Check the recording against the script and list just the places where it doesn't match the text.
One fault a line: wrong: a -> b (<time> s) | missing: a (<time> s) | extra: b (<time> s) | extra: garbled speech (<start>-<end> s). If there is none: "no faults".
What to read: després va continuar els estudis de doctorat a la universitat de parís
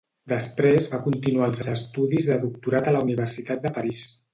extra: els (1.6 s)